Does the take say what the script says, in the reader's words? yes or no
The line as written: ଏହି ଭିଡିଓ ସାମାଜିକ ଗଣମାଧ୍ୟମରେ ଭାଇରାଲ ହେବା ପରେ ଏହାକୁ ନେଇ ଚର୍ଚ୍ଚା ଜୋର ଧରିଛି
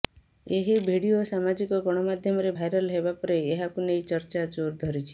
yes